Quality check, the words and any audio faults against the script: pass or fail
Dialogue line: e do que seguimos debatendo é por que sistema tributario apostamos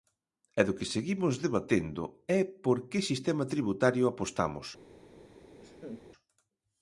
fail